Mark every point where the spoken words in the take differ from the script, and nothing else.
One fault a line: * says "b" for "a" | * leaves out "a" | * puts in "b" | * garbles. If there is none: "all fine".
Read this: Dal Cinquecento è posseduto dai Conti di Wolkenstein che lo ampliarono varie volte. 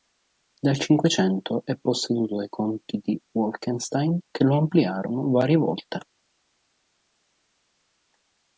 all fine